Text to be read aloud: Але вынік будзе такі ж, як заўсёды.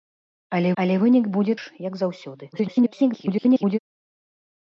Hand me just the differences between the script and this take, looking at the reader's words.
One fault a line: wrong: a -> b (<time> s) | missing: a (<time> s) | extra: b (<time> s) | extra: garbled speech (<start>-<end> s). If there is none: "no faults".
extra: але (0.8 s)
missing: такі (1.5 s)
extra: garbled speech (2.5-3.8 s)